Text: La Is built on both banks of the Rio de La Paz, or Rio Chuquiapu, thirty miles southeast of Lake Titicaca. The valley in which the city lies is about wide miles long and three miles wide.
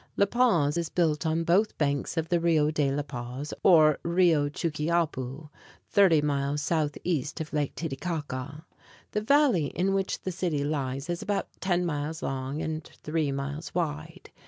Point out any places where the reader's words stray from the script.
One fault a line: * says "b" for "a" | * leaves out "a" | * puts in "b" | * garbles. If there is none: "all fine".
* puts in "Paz"
* says "ten" for "wide"